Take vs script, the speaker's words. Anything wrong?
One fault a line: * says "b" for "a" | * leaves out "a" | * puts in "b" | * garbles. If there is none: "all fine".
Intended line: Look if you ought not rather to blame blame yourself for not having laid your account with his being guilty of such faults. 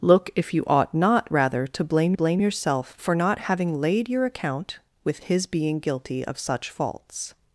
all fine